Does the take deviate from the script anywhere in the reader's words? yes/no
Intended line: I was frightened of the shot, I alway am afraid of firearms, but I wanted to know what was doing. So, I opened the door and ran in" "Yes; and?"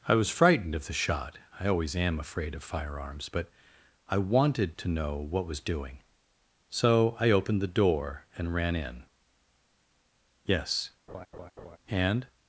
yes